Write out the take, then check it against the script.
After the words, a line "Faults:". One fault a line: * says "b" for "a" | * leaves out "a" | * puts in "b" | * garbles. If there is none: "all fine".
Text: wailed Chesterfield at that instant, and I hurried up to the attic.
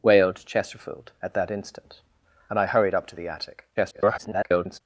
wailed Chesterfield at that instant, and I hurried up to the attic. [garbled]
Faults:
* garbles